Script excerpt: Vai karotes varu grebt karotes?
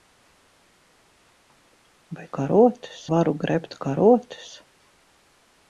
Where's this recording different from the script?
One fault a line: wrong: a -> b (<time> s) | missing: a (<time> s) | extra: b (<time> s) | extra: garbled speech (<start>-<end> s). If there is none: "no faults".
no faults